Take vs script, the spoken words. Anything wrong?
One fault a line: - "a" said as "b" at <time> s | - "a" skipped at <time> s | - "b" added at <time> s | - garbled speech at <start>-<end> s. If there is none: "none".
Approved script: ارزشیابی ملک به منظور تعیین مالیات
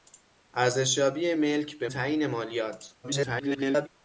- "منظور" skipped at 1.9 s
- garbled speech at 3.0-3.9 s